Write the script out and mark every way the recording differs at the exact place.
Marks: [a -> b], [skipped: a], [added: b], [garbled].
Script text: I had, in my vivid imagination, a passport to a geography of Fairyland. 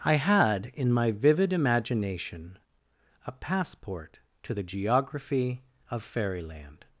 I had, in my vivid imagination, a passport to [a -> the] geography of Fairyland.